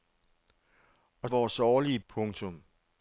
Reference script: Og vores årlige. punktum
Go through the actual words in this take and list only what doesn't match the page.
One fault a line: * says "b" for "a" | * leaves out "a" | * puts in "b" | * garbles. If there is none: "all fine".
all fine